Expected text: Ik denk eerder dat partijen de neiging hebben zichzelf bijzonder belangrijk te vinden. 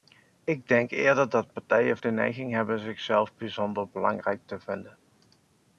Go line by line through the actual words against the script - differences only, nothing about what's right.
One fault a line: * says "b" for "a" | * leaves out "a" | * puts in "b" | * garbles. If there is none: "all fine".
all fine